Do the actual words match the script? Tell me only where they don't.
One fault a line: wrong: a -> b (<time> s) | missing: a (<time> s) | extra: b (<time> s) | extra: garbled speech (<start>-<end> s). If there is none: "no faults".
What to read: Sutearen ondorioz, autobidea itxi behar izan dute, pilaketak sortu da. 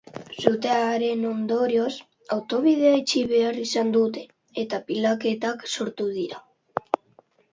extra: eta (4.6 s)
wrong: da -> dira (6.2 s)